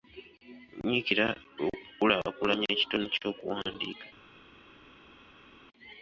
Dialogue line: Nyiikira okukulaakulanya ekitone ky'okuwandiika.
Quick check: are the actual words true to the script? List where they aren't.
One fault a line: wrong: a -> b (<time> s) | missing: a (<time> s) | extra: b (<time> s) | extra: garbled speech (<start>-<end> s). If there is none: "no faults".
no faults